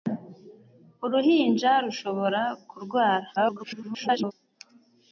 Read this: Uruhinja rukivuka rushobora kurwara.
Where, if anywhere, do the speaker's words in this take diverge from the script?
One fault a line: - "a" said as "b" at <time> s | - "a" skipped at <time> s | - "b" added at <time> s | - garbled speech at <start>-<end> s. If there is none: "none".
- "rukivuka" skipped at 1.7 s
- garbled speech at 3.4-4.3 s